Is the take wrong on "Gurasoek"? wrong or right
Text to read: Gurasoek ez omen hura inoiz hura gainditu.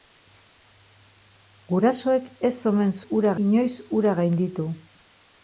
right